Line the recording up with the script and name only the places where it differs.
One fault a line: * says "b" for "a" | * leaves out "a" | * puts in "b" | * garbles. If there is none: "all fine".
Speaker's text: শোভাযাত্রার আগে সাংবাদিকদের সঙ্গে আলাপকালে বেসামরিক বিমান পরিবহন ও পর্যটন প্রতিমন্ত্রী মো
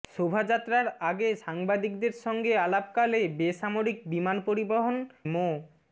* leaves out "ও পর্যটন প্রতিমন্ত্রী"